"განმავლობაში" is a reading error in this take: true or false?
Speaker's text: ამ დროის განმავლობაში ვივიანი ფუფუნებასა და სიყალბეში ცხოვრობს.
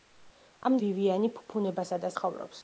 true